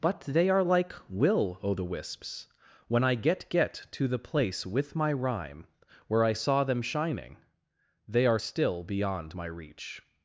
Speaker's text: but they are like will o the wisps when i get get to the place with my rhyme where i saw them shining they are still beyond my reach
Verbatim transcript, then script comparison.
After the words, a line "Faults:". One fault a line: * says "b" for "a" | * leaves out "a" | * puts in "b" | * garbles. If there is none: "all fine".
but they are like will o the wisps when i get get to the place with my rhyme where i saw them shining they are still beyond my reach
Faults:
all fine